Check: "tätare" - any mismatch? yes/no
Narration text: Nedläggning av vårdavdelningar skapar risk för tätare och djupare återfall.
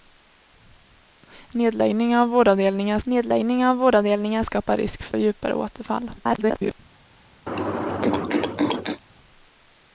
yes